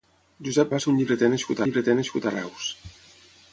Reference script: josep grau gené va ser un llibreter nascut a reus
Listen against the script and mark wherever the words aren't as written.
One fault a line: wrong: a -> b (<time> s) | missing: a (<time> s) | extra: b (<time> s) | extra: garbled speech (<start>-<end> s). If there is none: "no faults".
missing: grau gené (0.7 s)
extra: llibreter nascut (1.7 s)